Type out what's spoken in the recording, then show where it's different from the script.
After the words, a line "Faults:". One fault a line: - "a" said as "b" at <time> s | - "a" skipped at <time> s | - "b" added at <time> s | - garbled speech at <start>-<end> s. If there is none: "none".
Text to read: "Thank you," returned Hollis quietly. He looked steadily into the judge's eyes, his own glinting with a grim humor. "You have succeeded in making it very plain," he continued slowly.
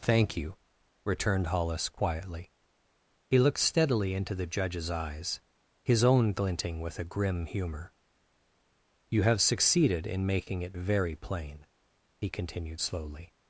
"Thank you," returned Hollis quietly. He looked steadily into the judge's eyes, his own glinting with a grim humor. "You have succeeded in making it very plain," he continued slowly.
Faults:
none